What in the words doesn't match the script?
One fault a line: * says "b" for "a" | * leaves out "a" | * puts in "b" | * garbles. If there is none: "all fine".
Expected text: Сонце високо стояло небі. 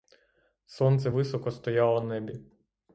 all fine